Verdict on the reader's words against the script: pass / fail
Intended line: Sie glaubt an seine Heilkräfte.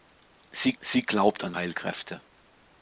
fail